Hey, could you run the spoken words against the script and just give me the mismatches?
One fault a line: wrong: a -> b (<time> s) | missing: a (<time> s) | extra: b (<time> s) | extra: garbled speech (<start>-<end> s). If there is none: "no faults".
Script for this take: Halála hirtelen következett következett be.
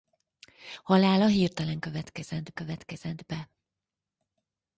no faults